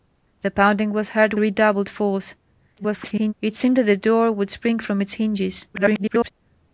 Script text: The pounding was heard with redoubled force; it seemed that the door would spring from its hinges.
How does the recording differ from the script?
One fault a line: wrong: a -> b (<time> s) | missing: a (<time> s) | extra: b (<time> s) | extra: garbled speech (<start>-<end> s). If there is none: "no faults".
missing: with (1.4 s)
extra: garbled speech (2.8-3.3 s)
extra: garbled speech (5.7-6.3 s)